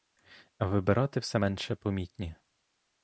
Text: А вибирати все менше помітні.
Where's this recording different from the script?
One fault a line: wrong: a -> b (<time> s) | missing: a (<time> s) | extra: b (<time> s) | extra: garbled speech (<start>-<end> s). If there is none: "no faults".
no faults